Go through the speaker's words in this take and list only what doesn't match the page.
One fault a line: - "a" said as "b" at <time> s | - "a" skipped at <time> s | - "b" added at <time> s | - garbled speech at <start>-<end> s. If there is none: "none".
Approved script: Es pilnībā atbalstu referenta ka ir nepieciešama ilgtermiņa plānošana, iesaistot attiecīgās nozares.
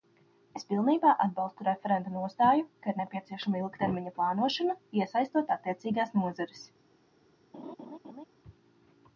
- "nostāju" added at 2.1 s